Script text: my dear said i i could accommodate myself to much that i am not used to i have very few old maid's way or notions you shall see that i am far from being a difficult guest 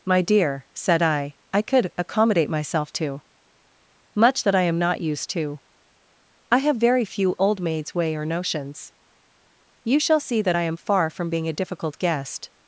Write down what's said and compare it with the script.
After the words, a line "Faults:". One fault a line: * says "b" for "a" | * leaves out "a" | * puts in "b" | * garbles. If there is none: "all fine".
my dear said i i could accommodate myself to much that i am not used to i have very few old maid's way or notions you shall see that i am far from being a difficult guest
Faults:
all fine